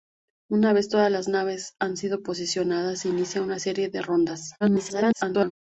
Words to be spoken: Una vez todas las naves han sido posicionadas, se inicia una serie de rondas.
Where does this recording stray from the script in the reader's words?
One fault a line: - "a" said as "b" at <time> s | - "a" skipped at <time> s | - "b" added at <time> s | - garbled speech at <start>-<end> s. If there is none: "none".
- garbled speech at 4.6-5.5 s